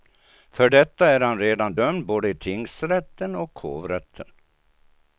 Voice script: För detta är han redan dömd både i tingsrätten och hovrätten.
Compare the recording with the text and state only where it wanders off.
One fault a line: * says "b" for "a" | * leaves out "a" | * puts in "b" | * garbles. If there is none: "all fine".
all fine